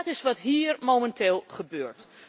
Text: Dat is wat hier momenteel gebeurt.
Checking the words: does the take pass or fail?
pass